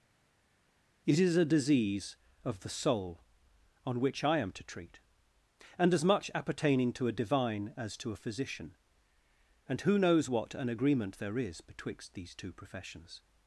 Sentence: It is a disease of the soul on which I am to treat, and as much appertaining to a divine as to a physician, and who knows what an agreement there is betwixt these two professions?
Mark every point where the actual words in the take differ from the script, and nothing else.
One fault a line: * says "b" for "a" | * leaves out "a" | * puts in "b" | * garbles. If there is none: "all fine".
all fine